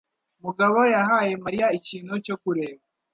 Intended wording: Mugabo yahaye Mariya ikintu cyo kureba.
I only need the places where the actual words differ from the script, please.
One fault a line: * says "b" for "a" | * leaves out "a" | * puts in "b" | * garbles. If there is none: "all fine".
all fine